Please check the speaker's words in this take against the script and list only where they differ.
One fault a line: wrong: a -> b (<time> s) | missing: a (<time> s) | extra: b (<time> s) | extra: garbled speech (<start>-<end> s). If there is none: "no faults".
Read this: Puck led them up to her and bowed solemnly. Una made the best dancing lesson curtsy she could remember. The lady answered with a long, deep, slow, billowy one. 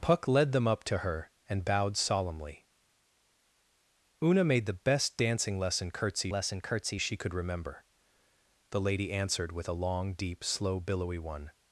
extra: lesson curtsy (6.3 s)